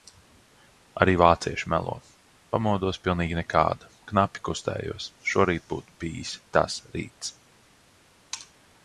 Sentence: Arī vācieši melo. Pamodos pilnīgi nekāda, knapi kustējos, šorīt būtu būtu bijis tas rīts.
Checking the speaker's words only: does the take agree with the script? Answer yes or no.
no